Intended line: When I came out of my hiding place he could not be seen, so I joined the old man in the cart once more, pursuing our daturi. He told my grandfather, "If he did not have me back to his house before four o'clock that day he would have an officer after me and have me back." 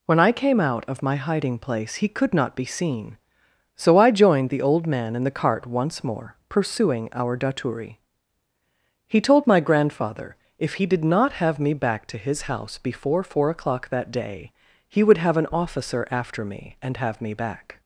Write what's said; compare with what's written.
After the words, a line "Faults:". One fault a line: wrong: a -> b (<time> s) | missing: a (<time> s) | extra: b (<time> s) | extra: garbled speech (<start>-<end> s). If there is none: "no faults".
When I came out of my hiding place he could not be seen, so I joined the old man in the cart once more, pursuing our daturi. He told my grandfather, "If he did not have me back to his house before four o'clock that day he would have an officer after me and have me back."
Faults:
no faults